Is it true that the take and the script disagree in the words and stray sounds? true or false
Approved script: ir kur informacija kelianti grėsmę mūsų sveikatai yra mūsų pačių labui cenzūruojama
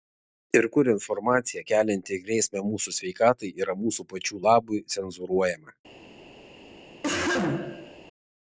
true